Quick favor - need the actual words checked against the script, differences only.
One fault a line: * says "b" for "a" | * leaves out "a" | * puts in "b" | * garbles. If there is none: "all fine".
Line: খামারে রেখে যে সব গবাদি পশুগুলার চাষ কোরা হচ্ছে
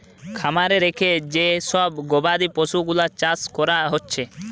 all fine